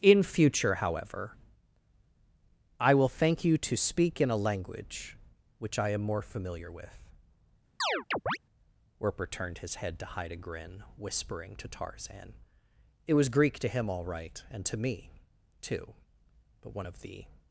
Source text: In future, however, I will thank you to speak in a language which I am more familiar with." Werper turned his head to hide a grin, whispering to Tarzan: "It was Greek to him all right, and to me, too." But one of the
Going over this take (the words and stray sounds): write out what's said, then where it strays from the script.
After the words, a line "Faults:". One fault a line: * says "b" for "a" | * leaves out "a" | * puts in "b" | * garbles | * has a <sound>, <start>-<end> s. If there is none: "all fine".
In future, however, I will thank you to speak in a language which I am more familiar with." Werper turned his head to hide a grin, whispering to Tarzan: "It was Greek to him all right, and to me, too." But one of the
Faults:
* has a chirp, 7.8-8.4 s